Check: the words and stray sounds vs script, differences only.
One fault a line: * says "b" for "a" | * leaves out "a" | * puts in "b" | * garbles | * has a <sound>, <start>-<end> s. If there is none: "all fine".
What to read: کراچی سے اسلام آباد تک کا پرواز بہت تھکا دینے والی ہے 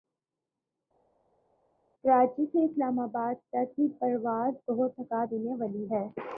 * says "کی" for "کا"